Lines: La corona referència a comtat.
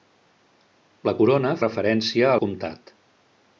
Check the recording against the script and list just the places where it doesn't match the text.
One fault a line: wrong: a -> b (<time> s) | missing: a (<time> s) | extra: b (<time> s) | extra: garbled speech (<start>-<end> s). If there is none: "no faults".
no faults